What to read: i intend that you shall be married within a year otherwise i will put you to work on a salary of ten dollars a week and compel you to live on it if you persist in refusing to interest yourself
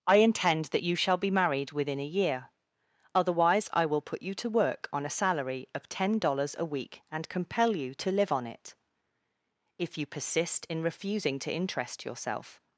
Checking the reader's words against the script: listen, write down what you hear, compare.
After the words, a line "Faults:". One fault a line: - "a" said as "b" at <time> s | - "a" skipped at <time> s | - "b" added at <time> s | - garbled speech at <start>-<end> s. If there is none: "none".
i intend that you shall be married within a year otherwise i will put you to work on a salary of ten dollars a week and compel you to live on it if you persist in refusing to interest yourself
Faults:
none